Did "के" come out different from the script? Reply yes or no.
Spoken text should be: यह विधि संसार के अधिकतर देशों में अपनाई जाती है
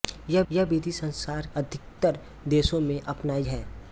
yes